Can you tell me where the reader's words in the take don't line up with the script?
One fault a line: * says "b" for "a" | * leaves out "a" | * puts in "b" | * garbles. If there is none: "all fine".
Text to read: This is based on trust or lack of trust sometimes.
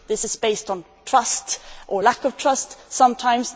all fine